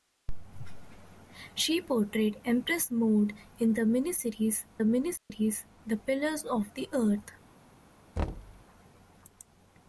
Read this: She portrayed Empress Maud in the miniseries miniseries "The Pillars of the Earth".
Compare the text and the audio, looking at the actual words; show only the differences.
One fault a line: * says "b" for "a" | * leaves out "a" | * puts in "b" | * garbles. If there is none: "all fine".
all fine